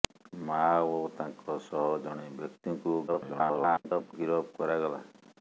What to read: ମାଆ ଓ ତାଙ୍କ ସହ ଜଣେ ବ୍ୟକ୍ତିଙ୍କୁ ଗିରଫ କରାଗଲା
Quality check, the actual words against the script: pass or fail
fail